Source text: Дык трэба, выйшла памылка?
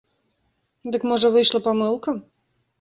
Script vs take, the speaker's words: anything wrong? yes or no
yes